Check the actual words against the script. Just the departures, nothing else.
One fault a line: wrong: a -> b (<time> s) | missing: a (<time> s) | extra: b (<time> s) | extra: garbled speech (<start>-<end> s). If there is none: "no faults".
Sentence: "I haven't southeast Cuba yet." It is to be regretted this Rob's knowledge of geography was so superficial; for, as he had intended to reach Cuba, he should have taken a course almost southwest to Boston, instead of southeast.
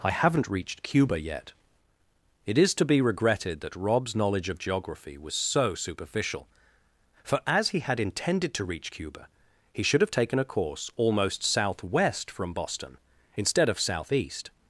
wrong: southeast -> reached (0.5 s)
wrong: this -> that (3.6 s)
wrong: to -> from (12.3 s)